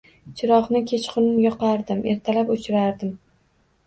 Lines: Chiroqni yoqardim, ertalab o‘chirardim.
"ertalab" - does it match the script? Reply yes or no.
yes